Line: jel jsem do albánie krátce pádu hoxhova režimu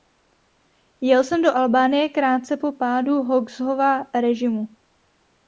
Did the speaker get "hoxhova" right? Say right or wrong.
right